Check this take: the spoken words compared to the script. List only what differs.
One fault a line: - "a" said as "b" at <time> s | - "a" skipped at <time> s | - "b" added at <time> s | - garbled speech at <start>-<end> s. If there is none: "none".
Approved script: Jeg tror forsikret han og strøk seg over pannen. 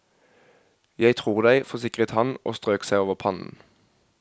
- "deg" added at 1.4 s